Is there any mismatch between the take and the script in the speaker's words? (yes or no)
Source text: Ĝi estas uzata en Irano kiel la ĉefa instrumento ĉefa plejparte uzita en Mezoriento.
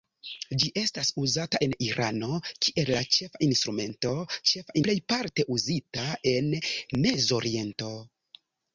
no